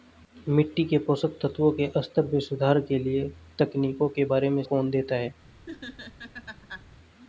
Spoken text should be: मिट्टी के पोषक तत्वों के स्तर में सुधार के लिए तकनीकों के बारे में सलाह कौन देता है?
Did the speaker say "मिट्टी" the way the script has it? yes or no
yes